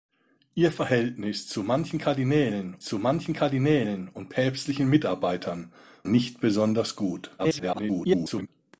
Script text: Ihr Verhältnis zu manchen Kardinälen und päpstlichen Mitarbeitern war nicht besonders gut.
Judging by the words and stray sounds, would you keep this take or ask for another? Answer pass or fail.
fail